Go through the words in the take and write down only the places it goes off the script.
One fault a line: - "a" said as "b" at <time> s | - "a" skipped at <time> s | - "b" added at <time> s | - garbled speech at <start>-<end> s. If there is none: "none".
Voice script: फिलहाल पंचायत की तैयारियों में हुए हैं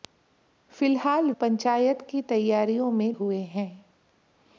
none